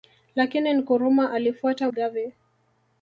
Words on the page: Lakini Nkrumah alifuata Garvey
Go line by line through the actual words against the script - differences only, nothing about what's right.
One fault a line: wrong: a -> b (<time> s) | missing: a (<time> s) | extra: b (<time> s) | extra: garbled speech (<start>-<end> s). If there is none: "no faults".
no faults